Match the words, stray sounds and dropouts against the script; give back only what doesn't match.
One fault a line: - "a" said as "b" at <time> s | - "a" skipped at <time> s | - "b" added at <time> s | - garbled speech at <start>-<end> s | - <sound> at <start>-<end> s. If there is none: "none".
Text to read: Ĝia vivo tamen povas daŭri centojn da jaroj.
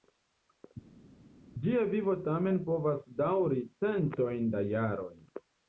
none